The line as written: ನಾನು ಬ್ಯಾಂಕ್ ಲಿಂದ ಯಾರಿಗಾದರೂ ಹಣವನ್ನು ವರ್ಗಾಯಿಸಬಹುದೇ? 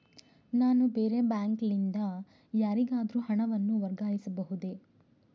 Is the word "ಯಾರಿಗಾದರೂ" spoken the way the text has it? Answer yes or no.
yes